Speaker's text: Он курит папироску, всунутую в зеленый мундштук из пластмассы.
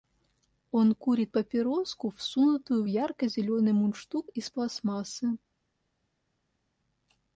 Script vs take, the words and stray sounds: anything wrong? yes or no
yes